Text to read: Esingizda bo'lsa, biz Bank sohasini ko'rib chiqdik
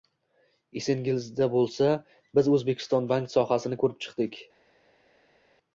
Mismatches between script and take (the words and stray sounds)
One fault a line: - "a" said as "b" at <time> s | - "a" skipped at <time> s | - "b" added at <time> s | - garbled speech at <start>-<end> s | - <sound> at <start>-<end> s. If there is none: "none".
- "O'zbekiston" added at 2.5 s